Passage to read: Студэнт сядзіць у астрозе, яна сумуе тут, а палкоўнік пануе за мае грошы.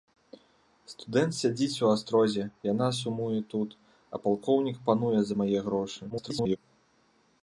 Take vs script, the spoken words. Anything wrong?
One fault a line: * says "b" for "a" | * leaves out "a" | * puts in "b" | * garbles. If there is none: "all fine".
* garbles